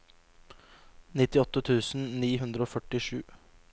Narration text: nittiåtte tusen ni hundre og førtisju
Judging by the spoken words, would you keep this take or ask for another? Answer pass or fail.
pass